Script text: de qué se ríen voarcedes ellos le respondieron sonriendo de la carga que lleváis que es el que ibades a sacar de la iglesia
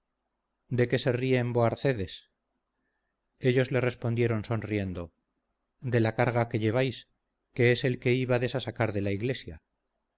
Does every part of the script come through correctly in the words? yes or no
yes